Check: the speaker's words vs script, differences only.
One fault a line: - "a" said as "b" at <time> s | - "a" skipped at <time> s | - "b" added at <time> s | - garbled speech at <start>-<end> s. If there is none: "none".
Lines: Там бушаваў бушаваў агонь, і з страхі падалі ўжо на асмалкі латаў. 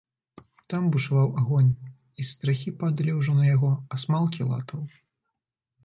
- "бушаваў" skipped at 1.3 s
- "яго" added at 3.5 s